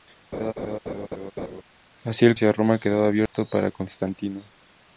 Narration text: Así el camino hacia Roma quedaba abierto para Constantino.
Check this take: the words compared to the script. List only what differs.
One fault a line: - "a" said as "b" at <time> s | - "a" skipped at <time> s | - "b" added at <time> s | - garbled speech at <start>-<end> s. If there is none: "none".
- "camino" skipped at 2.4 s